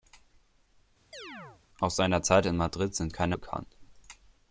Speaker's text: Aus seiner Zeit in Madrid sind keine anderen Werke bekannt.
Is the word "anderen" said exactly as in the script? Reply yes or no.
no